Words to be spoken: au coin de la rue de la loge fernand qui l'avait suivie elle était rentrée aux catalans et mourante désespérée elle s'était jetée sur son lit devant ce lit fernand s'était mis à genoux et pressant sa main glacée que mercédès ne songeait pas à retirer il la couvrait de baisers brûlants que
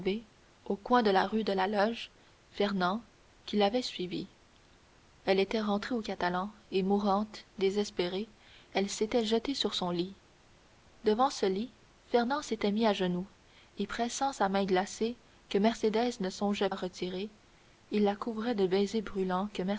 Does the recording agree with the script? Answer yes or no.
no